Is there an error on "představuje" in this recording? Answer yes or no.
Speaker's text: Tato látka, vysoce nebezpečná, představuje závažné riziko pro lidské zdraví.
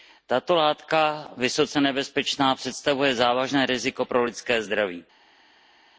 no